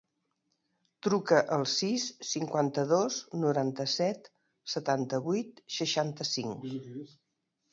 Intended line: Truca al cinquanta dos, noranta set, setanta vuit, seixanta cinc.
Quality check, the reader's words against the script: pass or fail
fail